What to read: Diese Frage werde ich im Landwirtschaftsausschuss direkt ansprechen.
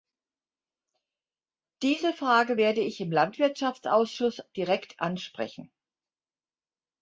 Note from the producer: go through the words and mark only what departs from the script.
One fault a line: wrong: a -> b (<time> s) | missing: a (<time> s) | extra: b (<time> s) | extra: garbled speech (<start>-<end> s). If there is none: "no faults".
no faults